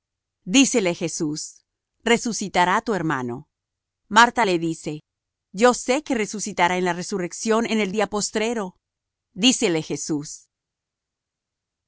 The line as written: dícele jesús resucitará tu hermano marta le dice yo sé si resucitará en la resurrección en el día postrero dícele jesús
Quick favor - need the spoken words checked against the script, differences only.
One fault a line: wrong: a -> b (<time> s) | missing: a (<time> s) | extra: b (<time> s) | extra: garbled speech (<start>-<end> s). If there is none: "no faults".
wrong: si -> que (6.0 s)